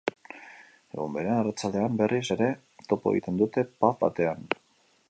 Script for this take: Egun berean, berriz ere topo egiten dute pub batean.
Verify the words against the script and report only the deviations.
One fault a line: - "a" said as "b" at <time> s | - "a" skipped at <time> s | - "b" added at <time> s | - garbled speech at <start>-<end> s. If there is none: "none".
- "arratsaldean" added at 1.4 s